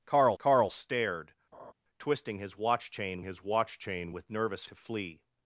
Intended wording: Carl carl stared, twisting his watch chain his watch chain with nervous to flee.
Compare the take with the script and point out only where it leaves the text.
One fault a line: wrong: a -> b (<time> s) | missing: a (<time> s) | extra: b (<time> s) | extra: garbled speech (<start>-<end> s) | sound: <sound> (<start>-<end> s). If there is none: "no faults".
sound: laugh (1.5-1.7 s)